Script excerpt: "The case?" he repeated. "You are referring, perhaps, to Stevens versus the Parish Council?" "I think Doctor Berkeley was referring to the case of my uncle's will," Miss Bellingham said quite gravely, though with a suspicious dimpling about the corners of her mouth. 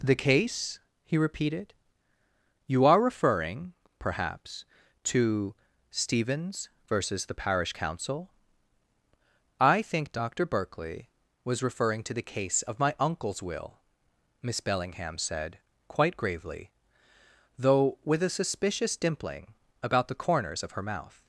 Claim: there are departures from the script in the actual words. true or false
false